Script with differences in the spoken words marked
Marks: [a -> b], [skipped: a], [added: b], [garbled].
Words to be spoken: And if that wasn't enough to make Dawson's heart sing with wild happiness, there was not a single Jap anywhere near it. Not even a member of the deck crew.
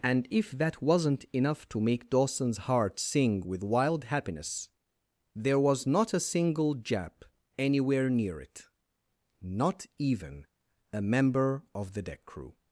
And if that wasn't enough to make Dawson's heart sing with wild happiness, there was not a single Jap anywhere near it. Not even a member of the deck crew.